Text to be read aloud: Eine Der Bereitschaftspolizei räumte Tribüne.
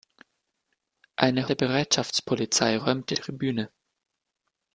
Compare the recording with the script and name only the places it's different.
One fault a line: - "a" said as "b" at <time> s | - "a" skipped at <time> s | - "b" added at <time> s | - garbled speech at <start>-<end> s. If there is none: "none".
none